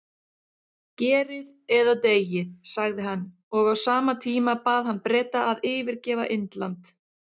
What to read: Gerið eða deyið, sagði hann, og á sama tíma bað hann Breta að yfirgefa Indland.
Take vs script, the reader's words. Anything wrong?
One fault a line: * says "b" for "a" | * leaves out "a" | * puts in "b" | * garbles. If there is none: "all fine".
all fine